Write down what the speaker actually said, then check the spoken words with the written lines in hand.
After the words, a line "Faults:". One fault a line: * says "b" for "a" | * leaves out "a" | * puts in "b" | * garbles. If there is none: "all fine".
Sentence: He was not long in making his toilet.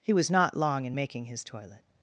He was not long in making his toilet.
Faults:
all fine